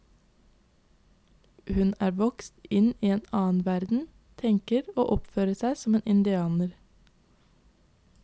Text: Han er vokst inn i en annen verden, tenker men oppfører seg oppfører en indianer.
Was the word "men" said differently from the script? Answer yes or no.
yes